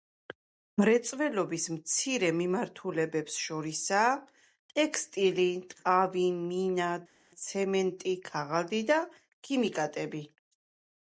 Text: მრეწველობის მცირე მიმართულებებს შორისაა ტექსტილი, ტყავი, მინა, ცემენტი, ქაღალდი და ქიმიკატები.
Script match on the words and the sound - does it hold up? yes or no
yes